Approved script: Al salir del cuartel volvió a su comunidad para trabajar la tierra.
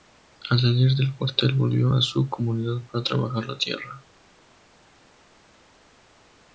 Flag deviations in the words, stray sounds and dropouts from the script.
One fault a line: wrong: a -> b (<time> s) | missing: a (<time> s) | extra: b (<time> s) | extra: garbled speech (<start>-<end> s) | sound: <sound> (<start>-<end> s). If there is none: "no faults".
no faults